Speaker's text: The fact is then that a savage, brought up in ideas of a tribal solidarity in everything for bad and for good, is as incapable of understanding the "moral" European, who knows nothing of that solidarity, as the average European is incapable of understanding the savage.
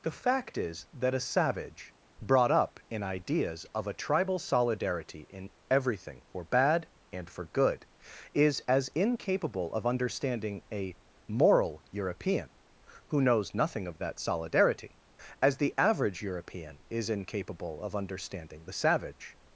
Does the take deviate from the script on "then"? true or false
true